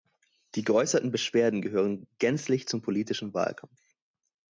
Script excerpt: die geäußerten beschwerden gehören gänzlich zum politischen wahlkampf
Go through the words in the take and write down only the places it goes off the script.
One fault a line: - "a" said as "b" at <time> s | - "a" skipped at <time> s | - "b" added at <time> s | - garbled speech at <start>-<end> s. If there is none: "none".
none